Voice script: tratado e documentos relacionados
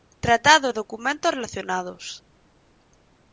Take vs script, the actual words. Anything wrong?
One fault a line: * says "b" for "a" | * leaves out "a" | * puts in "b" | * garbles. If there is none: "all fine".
all fine